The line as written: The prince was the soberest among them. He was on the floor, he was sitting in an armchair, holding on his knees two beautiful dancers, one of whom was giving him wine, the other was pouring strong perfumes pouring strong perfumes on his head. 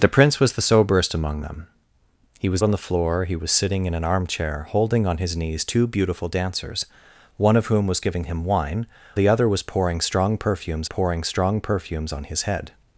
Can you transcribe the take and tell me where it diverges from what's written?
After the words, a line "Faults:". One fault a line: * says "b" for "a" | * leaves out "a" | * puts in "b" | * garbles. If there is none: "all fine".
The prince was the soberest among them. He was on the floor, he was sitting in an armchair, holding on his knees two beautiful dancers, one of whom was giving him wine, the other was pouring strong perfumes pouring strong perfumes on his head.
Faults:
all fine